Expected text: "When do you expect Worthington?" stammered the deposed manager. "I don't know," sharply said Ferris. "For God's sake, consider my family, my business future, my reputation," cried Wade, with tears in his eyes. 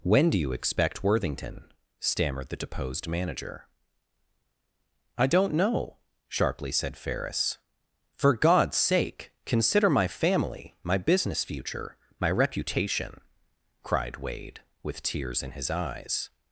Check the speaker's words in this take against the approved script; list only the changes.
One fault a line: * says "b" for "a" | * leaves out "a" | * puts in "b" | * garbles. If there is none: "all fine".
all fine